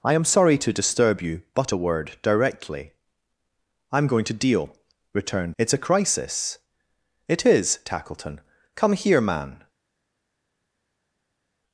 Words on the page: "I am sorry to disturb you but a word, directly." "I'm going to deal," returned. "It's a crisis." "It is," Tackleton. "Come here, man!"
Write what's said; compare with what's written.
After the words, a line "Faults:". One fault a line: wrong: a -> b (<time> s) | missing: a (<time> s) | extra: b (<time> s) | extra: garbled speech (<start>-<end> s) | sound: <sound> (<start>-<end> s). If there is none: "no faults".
"I am sorry to disturb you but a word, directly." "I'm going to deal," returned. "It's a crisis." "It is," Tackleton. "Come here, man!"
Faults:
no faults